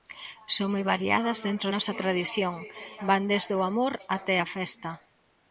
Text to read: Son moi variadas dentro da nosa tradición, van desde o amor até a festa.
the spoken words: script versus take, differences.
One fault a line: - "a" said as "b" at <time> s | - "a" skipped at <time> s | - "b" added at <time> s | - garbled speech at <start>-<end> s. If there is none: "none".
- "da" skipped at 1.7 s